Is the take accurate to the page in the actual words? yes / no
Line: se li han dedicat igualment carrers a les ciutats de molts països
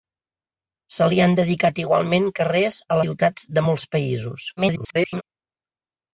no